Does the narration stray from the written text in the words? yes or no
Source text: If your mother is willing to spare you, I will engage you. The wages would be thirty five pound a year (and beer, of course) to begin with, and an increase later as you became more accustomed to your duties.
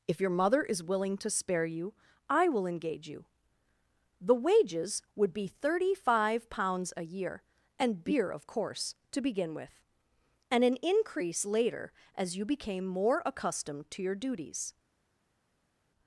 yes